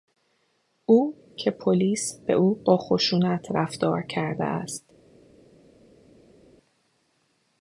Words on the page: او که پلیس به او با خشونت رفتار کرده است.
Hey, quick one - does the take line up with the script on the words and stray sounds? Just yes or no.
yes